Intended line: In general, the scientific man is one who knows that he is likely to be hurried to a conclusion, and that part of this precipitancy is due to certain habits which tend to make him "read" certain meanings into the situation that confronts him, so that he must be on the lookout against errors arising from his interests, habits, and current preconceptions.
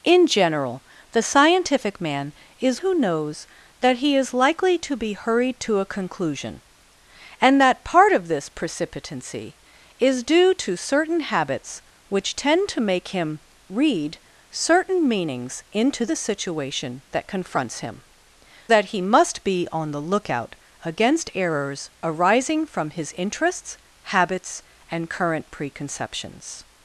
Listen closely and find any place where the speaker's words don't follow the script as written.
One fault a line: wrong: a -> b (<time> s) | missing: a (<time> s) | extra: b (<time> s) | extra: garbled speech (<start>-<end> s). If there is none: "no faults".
missing: one (2.8 s)
missing: so (18.0 s)